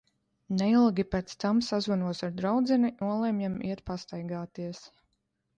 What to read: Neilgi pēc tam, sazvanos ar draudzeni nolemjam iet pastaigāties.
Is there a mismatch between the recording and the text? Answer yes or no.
no